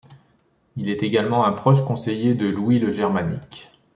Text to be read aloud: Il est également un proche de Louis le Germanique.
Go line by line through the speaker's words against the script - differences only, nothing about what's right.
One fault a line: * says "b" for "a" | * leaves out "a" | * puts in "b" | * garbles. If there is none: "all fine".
* puts in "conseiller"